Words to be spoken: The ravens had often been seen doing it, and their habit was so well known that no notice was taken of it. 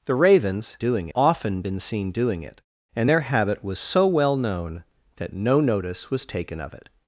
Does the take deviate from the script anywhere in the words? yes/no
yes